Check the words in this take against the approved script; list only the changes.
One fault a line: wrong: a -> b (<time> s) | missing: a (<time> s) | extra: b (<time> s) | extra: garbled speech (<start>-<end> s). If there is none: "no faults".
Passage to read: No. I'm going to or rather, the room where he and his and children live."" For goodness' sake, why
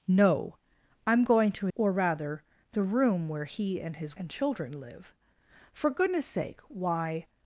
no faults